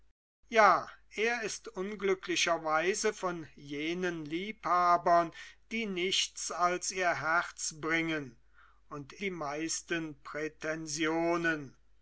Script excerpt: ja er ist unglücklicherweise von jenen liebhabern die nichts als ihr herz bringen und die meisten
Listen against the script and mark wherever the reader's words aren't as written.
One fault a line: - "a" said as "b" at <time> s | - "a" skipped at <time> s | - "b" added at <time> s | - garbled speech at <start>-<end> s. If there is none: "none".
none